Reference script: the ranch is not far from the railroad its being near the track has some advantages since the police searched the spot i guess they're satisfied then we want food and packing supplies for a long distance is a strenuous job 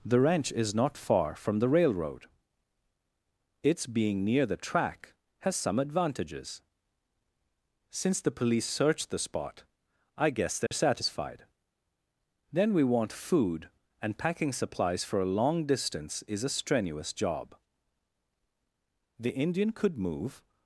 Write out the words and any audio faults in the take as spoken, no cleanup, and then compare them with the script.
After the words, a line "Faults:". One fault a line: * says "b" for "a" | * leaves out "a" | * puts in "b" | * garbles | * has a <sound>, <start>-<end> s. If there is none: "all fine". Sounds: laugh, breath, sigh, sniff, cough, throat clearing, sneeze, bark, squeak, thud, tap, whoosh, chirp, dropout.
the ranch is not far from the railroad its being near the track has some advantages since the police searched the spot i guess they're satisfied then we want food and packing supplies for a long distance is a strenuous job the indian could move
Faults:
* has a dropout, 10.7-10.7 s
* puts in "the indian could move"